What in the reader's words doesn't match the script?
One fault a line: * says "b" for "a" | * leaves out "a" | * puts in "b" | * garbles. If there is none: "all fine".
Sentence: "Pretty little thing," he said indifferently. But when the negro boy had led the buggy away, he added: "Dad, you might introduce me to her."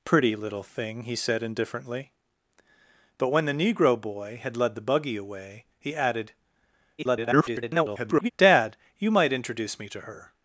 * garbles